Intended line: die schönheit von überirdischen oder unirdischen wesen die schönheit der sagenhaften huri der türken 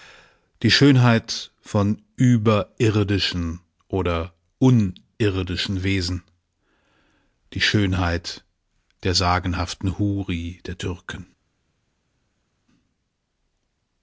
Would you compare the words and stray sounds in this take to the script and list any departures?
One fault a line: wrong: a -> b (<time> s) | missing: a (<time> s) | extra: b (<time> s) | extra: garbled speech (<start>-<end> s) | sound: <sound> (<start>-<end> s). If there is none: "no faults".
no faults